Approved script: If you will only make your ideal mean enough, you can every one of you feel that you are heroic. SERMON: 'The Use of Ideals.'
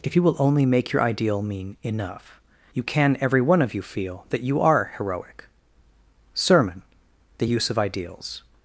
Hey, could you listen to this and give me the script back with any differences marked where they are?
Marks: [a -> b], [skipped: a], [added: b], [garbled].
If you will only make your ideal mean enough, you can every one of you feel that you are heroic. SERMON: 'The Use of Ideals.'